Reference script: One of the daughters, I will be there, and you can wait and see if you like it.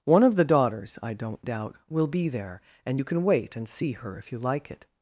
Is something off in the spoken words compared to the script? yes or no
yes